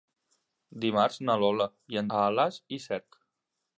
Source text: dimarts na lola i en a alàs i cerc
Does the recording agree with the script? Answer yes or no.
yes